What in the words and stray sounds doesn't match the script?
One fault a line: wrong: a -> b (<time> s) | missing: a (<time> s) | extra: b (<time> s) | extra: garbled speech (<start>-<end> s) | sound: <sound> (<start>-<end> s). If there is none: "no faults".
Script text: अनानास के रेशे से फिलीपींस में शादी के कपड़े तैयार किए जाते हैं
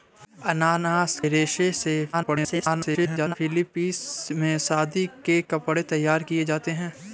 missing: के (1.2 s)
extra: garbled speech (2.1-3.4 s)